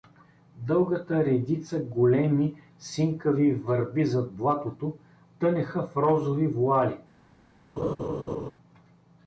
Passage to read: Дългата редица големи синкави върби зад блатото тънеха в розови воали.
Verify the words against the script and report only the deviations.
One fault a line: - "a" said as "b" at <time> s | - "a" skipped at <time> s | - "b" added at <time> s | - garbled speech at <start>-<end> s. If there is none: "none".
none